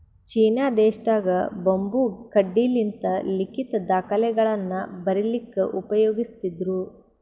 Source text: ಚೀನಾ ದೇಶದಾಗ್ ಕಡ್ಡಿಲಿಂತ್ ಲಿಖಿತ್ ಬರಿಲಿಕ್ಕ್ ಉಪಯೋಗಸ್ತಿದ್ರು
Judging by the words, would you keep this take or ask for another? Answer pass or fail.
fail